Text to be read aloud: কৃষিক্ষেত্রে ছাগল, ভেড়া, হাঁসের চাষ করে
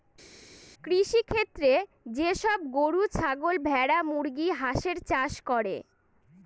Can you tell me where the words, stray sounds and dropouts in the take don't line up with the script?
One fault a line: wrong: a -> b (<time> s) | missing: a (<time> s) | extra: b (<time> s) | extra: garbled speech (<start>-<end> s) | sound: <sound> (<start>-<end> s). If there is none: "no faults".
extra: যে সব গরু (2.1 s)
extra: মুরগি (4.0 s)